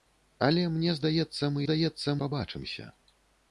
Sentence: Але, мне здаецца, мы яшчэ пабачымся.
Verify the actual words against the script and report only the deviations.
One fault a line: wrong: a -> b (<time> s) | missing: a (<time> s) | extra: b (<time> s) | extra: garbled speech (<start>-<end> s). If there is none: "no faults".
wrong: яшчэ -> здаецца (1.6 s)